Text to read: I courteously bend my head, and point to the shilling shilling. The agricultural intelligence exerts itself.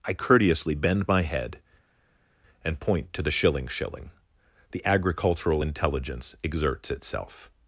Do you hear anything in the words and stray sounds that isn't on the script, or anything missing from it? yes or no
no